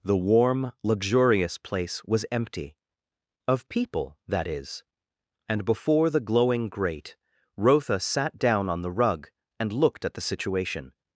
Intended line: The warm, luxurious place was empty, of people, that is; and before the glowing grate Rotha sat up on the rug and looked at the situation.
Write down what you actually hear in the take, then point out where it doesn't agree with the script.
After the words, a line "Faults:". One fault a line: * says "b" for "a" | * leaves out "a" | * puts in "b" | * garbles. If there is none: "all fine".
The warm, luxurious place was empty, of people, that is; and before the glowing grate Rotha sat down on the rug and looked at the situation.
Faults:
* says "down" for "up"